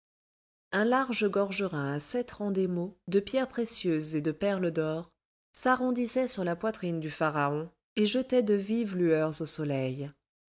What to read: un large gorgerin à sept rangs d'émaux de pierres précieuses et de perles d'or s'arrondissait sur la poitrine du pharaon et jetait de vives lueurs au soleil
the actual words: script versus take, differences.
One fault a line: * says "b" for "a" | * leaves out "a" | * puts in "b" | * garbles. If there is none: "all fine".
all fine